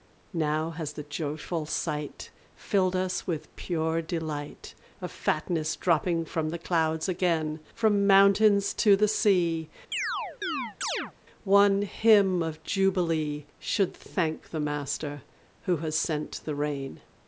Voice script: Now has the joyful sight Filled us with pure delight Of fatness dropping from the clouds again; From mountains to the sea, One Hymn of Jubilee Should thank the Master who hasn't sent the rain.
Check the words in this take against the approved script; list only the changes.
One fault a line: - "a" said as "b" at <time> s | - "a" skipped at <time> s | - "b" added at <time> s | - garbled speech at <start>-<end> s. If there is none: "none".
- "hasn't" said as "has" at 15.8 s